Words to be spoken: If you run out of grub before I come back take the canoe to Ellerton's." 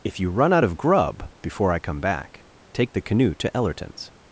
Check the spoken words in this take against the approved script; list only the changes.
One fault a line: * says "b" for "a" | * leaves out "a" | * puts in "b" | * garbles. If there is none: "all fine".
all fine